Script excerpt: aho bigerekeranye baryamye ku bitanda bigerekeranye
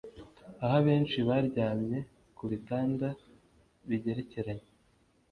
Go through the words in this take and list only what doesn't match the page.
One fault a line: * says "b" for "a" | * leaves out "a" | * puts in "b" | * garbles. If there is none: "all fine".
* says "abenshi" for "bigerekeranye"